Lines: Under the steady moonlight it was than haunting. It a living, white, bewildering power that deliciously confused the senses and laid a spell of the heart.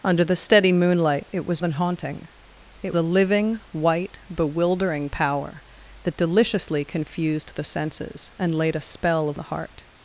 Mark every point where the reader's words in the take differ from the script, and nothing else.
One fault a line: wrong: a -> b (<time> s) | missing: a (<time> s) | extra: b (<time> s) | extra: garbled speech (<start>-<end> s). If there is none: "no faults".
no faults